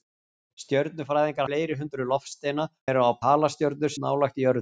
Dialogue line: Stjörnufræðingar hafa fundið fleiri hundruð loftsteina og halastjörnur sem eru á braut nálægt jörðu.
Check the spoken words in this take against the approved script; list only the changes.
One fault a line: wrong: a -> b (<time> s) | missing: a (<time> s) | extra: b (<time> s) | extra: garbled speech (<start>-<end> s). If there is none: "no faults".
missing: hafa fundið (1.5 s)
missing: og halastjörnur sem (2.7 s)
wrong: braut -> halastjörnur (3.2 s)